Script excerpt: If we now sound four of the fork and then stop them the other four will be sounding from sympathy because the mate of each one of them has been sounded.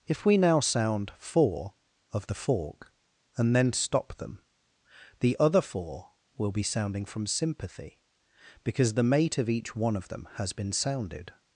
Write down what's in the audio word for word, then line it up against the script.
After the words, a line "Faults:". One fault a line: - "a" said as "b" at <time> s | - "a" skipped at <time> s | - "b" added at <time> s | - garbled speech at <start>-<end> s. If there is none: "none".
If we now sound four of the fork and then stop them the other four will be sounding from sympathy because the mate of each one of them has been sounded.
Faults:
none